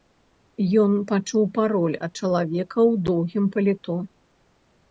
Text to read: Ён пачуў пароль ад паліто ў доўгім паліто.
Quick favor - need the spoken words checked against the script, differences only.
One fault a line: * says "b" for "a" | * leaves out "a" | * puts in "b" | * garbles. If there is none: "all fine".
* says "чалавека" for "паліто"